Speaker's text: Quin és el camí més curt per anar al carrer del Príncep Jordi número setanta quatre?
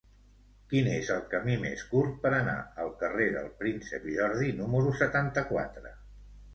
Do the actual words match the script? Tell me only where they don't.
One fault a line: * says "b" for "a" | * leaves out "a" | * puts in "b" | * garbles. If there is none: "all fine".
all fine